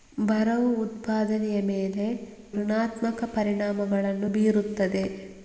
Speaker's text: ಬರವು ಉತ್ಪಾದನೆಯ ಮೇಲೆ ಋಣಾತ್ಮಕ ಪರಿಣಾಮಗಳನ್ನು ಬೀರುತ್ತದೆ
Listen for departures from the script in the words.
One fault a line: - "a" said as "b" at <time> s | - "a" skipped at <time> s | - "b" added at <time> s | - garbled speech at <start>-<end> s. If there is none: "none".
none